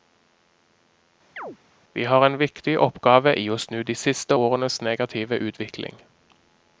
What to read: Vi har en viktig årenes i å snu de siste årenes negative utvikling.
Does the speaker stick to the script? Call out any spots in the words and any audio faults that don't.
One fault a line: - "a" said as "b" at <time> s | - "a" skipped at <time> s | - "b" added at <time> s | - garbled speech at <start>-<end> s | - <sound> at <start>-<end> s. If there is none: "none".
- chirp at 1.4-1.6 s
- "årenes" said as "oppgave" at 2.8 s